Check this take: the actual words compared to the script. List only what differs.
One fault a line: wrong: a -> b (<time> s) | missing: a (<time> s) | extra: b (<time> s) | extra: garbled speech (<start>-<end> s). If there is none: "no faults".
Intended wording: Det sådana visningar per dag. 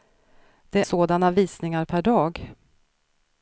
no faults